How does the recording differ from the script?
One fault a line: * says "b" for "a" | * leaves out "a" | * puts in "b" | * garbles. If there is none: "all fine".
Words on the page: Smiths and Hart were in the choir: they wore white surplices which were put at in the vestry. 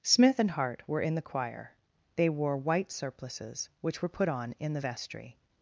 * says "Smith" for "Smiths"
* says "on" for "at"